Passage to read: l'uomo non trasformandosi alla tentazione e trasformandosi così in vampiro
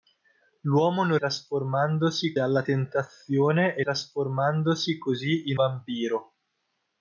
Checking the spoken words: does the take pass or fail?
pass